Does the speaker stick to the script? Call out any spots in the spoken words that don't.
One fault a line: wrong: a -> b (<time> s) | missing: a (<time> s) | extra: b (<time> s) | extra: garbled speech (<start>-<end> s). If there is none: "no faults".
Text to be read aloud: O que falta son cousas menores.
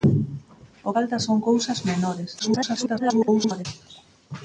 missing: que (0.9 s)
extra: garbled speech (2.4-3.7 s)